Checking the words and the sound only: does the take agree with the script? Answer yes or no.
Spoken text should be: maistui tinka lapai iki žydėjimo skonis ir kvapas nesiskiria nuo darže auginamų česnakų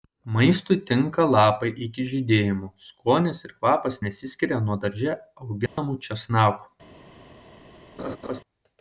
no